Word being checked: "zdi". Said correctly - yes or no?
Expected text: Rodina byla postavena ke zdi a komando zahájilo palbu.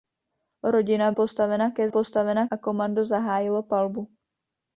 no